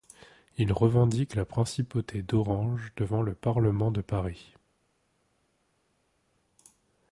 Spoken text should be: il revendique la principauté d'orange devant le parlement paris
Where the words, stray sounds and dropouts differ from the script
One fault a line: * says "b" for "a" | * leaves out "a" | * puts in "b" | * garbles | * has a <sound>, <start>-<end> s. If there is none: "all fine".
* puts in "de"